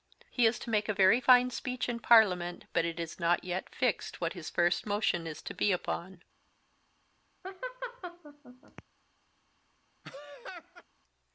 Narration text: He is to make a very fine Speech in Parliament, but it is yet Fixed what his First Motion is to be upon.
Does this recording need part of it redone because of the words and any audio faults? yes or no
yes